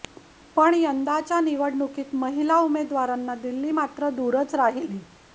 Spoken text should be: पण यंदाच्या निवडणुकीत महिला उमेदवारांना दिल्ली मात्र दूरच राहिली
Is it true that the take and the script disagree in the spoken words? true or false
false